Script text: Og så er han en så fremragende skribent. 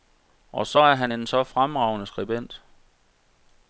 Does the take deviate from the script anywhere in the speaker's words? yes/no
no